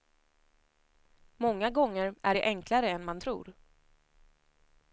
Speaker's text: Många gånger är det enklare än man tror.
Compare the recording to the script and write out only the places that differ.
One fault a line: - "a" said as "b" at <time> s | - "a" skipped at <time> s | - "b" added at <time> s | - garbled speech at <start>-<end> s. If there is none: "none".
none